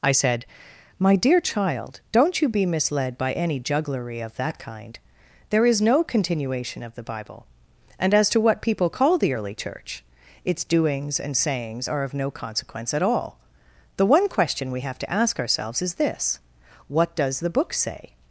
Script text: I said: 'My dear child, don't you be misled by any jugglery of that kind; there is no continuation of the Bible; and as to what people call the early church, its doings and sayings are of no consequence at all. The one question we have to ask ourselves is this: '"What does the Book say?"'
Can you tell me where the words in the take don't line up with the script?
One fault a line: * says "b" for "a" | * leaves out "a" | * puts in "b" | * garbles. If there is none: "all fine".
all fine